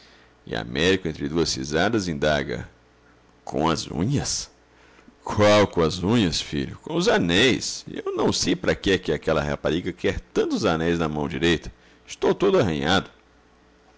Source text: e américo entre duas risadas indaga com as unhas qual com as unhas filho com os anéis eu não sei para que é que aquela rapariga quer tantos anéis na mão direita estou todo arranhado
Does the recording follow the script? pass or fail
pass